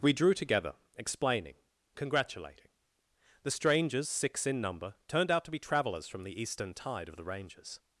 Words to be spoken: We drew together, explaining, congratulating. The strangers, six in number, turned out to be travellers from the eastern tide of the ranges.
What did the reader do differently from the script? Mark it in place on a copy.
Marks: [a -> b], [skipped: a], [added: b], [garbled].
We drew together, explaining, congratulating. The strangers, six in number, turned out to be travellers from the eastern tide of the ranges.